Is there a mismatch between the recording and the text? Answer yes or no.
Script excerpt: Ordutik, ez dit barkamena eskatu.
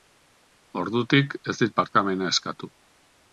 no